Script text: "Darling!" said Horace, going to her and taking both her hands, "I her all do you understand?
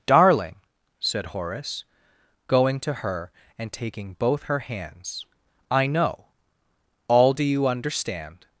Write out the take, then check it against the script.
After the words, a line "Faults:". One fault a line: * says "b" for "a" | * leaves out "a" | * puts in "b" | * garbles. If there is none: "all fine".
"Darling!" said Horace, going to her and taking both her hands, "I know all do you understand?
Faults:
* says "know" for "her"